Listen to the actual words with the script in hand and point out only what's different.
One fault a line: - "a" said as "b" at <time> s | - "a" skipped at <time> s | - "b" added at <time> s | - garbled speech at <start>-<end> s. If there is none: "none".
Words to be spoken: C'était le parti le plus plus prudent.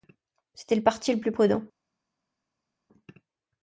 - "plus" skipped at 1.3 s